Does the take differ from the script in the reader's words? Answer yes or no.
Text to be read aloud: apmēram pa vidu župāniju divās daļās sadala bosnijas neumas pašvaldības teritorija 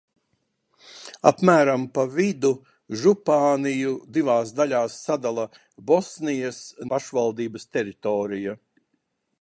yes